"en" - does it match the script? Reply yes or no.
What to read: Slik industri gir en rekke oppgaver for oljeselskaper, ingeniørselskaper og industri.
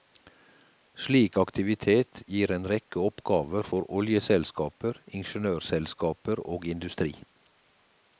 yes